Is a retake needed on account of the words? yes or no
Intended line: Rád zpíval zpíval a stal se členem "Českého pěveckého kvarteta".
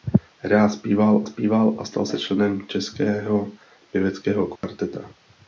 no